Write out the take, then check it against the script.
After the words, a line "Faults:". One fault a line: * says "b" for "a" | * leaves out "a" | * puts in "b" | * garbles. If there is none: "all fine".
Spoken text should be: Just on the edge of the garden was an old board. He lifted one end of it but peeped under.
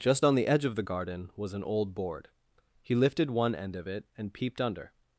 Just on the edge of the garden was an old board. He lifted one end of it and peeped under.
Faults:
* says "and" for "but"